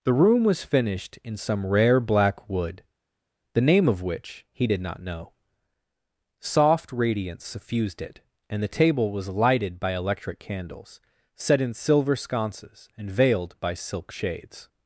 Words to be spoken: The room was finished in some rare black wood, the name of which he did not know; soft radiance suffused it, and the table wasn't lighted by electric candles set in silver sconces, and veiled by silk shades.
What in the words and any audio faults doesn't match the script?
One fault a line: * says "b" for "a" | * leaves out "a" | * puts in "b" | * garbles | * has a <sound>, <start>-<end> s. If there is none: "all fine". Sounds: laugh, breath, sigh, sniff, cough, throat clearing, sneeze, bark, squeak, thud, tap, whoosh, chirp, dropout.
* says "was" for "wasn't"